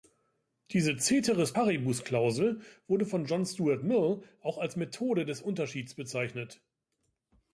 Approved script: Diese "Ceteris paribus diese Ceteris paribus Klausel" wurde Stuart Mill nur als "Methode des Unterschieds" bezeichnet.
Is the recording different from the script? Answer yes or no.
yes